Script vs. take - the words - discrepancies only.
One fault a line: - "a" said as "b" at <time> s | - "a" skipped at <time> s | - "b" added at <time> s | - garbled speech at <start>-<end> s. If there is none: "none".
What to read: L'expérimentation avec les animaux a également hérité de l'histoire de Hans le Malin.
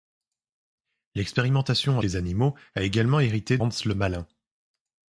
- "avec" skipped at 2.0 s
- "de l'histoire de" skipped at 3.6 s